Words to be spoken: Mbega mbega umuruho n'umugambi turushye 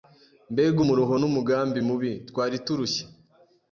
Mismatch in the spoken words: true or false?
true